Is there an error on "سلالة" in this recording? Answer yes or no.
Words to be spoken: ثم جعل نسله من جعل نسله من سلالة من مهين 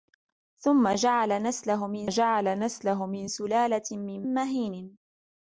no